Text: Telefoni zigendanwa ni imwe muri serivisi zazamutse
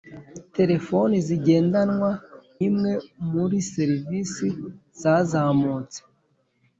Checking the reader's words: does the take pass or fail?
fail